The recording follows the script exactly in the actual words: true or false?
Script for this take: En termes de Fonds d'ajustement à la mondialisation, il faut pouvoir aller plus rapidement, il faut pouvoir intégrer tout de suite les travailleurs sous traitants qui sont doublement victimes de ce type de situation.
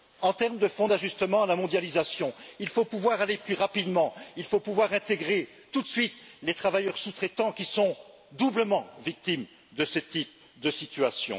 true